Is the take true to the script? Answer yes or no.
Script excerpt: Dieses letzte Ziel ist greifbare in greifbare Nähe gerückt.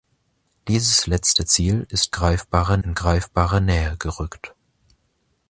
yes